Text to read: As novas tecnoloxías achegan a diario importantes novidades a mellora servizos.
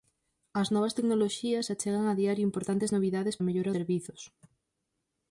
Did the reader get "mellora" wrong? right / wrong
right